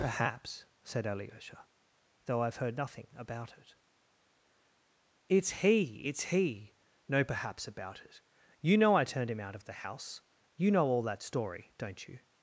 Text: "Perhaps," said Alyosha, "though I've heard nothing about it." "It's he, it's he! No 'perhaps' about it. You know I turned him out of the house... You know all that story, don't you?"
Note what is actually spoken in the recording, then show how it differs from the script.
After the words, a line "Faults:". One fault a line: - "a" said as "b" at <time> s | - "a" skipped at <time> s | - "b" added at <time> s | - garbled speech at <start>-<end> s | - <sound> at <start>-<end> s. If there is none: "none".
"Perhaps," said Alyosha, "though I've heard nothing about it." "It's he, it's he! No 'perhaps' about it. You know I turned him out of the house... You know all that story, don't you?"
Faults:
none